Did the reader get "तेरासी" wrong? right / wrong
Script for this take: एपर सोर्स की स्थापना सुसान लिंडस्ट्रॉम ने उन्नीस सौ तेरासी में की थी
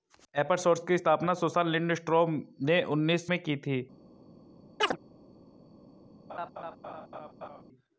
wrong